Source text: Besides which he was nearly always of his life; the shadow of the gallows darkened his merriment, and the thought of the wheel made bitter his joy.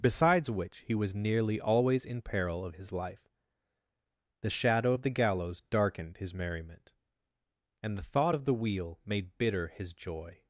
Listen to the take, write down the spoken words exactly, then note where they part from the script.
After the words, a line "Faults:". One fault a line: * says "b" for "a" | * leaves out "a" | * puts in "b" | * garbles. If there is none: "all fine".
Besides which he was nearly always in peril of his life; the shadow of the gallows darkened his merriment, and the thought of the wheel made bitter his joy.
Faults:
* puts in "in peril"